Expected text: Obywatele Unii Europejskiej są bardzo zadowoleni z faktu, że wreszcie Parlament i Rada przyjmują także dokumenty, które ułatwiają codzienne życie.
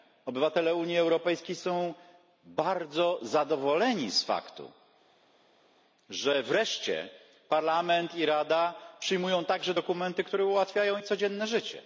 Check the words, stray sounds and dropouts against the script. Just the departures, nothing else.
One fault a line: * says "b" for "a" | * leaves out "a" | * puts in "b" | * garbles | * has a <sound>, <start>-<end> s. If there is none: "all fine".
all fine